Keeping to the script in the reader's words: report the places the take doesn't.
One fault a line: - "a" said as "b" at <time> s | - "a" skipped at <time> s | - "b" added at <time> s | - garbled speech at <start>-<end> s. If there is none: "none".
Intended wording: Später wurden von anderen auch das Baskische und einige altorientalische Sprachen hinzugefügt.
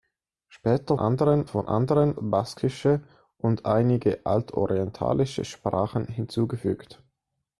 - "wurden" said as "anderen" at 1.0 s
- "auch das" skipped at 2.2 s